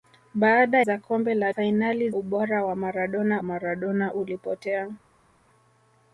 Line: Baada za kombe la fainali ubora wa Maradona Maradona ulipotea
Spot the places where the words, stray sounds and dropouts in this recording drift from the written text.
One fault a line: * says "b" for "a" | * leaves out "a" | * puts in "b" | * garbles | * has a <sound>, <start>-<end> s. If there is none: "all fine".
all fine